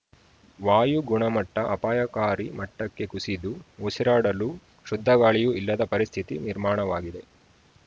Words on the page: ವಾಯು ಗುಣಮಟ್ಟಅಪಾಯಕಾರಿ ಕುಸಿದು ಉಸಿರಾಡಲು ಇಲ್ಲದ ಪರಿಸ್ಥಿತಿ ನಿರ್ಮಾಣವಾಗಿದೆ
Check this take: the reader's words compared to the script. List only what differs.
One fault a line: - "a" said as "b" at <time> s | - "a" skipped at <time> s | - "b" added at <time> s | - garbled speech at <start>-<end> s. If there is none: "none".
- "ಮಟ್ಟಕ್ಕೆ" added at 2.6 s
- "ಶುದ್ಧಗಾಳಿಯೂ" added at 4.9 s